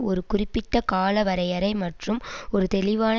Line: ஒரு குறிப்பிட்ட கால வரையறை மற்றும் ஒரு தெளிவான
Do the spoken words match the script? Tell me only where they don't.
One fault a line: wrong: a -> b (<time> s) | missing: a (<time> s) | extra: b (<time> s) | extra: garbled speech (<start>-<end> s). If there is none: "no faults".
no faults